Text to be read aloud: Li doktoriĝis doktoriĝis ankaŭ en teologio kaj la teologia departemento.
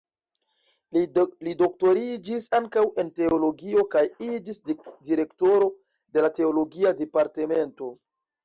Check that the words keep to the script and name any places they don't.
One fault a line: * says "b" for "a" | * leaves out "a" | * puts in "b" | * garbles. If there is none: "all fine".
* leaves out "doktoriĝis"
* puts in "iĝis direktoro de"